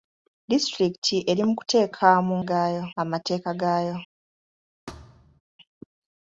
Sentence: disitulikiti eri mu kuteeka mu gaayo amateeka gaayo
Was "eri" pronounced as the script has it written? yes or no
yes